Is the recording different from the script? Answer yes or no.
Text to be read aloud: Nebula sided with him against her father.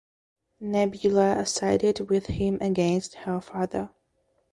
no